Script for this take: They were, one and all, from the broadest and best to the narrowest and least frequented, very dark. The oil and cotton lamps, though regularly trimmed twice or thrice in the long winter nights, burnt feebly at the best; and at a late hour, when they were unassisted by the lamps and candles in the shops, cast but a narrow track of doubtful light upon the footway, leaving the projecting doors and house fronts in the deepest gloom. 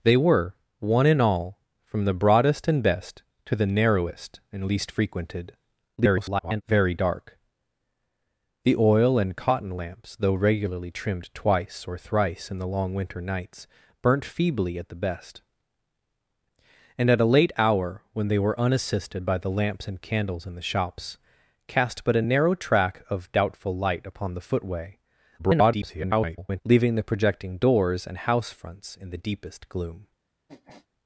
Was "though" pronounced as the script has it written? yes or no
yes